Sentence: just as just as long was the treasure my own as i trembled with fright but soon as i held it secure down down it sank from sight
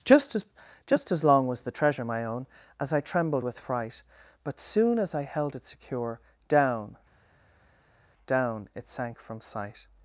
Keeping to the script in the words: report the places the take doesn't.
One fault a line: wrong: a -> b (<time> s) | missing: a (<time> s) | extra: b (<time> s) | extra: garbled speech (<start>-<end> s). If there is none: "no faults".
no faults